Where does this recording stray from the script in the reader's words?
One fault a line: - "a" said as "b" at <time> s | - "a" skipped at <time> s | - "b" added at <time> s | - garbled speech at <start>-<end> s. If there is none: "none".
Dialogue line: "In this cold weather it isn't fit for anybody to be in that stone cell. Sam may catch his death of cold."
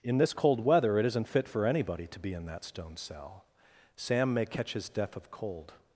none